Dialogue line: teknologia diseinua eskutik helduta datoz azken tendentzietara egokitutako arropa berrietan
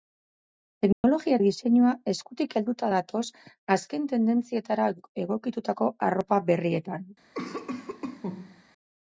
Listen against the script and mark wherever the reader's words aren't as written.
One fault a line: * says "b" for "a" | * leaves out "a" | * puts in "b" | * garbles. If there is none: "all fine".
all fine